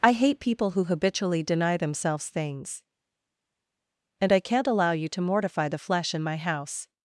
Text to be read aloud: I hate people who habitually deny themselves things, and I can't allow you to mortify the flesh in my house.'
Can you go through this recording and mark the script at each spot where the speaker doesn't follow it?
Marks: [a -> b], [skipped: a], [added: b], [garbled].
I hate people who habitually deny themselves things, and I can't allow you to mortify the flesh in my house.'